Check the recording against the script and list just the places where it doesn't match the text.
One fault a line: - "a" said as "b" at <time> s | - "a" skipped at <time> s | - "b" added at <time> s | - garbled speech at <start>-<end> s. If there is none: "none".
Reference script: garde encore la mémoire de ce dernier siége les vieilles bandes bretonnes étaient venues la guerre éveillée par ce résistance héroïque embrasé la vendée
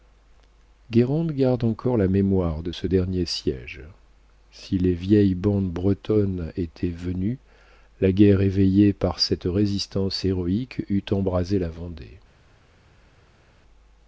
- "si" added at 4.5 s
- "ce" said as "cette" at 9.2 s
- "eût" added at 10.9 s